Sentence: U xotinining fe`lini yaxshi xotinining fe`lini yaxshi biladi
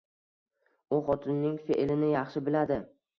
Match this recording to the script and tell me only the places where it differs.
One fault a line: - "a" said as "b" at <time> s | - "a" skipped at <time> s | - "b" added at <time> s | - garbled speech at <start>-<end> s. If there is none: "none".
- "xotinining fe`lini yaxshi" skipped at 2.4 s